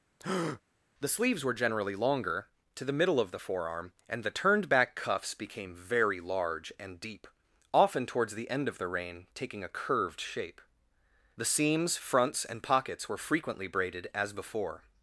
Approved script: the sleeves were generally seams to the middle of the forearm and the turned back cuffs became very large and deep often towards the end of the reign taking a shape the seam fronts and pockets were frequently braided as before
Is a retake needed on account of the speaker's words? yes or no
yes